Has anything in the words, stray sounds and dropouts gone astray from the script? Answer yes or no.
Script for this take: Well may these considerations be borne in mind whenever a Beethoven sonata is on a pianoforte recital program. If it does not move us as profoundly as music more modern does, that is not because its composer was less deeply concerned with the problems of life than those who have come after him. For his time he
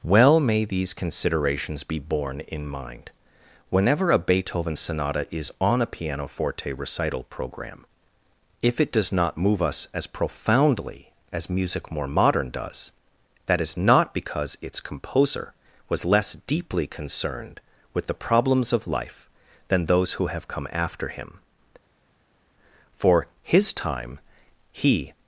no